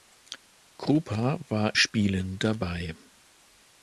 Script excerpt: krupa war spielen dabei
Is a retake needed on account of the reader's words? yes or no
no